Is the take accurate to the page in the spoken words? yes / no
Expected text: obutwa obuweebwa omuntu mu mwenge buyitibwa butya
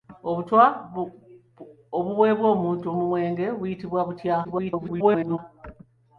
no